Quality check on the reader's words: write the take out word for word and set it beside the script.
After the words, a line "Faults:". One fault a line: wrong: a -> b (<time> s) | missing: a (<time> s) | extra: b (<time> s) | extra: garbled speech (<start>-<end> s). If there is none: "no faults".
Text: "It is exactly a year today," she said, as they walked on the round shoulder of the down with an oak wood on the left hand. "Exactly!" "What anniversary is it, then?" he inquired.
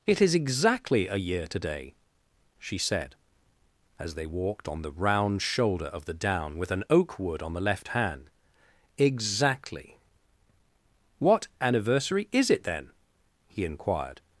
"It is exactly a year today," she said, as they walked on the round shoulder of the down with an oak wood on the left hand. "Exactly!" "What anniversary is it, then?" he inquired.
Faults:
no faults